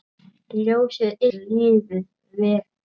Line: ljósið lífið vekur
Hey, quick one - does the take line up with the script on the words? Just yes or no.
yes